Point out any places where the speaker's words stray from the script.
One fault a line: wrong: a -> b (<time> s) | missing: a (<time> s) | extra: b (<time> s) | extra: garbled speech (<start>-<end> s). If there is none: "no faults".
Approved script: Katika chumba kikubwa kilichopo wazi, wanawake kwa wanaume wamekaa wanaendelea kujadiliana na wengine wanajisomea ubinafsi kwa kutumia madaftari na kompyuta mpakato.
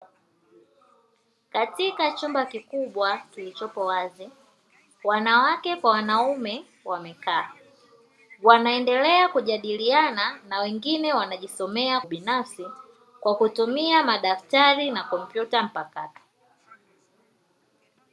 no faults